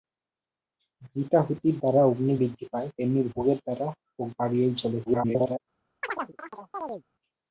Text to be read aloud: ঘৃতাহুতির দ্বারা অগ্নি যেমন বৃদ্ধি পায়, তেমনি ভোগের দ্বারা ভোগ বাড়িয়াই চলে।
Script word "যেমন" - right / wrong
wrong